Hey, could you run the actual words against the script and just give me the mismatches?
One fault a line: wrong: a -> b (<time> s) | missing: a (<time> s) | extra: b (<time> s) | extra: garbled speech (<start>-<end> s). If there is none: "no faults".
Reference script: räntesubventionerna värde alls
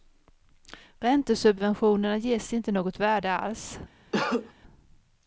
extra: ges inte något (2.2 s)